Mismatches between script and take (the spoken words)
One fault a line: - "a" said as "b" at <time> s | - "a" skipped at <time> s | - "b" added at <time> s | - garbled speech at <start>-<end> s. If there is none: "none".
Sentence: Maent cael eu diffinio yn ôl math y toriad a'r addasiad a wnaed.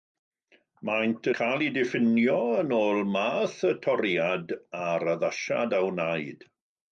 none